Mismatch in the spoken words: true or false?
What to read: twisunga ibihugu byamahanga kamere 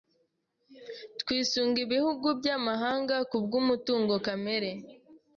true